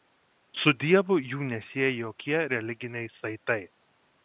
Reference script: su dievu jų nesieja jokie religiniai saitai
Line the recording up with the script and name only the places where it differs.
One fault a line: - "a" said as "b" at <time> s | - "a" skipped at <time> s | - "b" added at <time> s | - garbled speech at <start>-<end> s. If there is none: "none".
none